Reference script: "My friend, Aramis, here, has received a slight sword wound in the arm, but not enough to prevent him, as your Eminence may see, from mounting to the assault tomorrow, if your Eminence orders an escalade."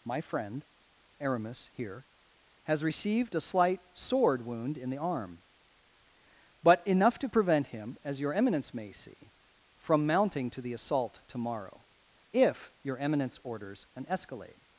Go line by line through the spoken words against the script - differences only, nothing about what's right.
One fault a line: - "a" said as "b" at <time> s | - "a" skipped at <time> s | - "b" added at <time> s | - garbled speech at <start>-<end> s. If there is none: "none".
- "not" skipped at 6.8 s